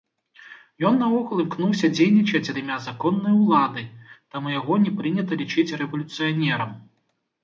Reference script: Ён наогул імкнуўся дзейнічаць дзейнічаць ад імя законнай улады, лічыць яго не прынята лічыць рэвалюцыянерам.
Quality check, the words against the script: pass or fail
fail